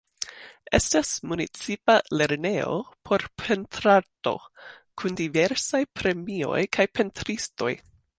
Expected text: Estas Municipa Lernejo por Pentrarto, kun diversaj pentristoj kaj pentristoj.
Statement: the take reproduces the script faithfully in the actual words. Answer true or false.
false